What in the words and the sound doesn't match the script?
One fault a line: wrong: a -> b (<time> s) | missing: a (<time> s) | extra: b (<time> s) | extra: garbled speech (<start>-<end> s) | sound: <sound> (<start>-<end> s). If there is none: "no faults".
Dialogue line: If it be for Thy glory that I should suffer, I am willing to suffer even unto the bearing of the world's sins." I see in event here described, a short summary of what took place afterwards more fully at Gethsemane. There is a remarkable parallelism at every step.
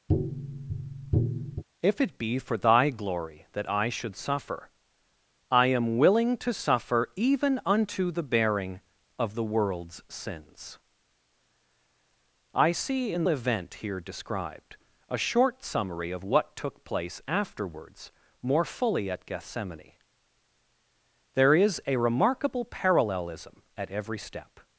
sound: tap (0.1-1.6 s)